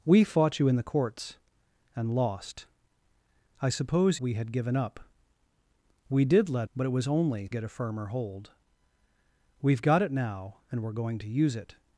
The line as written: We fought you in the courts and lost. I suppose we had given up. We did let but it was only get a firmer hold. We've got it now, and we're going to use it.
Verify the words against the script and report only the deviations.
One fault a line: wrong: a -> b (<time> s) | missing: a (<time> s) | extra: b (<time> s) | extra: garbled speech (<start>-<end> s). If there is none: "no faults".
no faults